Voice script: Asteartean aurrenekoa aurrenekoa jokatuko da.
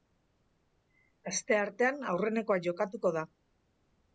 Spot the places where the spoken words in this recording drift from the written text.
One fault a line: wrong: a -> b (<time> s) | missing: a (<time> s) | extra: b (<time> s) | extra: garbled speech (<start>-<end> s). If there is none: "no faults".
missing: aurrenekoa (2.6 s)